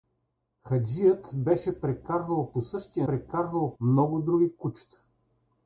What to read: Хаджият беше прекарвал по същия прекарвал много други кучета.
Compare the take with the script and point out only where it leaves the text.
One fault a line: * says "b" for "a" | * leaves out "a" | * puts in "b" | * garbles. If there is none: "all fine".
all fine